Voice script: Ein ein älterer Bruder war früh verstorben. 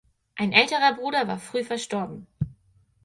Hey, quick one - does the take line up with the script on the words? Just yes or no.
no